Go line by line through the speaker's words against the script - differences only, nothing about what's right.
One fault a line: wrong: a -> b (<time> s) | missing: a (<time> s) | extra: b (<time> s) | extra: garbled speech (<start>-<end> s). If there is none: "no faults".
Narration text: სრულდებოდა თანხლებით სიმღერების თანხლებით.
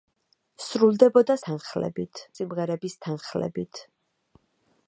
no faults